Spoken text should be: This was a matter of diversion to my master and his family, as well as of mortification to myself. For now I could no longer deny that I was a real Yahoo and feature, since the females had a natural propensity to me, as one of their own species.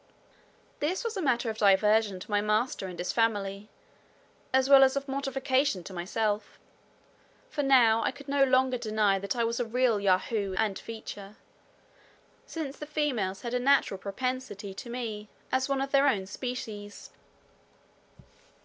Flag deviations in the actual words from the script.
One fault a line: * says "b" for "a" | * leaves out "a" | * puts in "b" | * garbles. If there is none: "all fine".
all fine